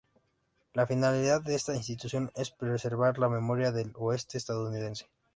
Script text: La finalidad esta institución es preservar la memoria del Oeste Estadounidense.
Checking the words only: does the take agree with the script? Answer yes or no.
no